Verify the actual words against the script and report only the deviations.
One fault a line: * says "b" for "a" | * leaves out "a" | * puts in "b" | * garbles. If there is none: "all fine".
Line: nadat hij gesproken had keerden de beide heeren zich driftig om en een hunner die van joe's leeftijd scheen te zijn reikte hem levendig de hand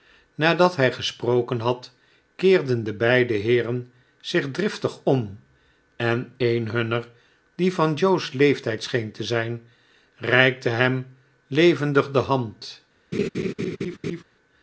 all fine